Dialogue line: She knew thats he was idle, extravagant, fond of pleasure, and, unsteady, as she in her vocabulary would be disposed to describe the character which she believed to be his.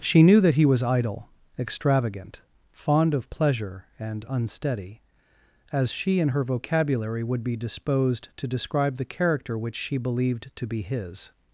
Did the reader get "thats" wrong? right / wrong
wrong